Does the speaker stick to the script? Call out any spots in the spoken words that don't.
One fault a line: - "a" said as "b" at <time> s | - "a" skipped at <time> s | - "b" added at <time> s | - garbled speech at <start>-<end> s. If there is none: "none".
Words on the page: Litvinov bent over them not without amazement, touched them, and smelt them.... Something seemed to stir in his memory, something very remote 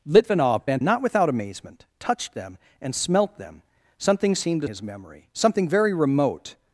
- "over them" skipped at 0.8 s
- "stir in" skipped at 4.7 s